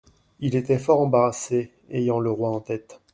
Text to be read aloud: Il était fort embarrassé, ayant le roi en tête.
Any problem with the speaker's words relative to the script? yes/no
no